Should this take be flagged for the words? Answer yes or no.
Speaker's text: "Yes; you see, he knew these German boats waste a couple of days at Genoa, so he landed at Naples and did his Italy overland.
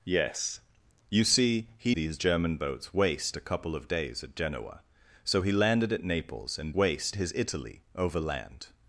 yes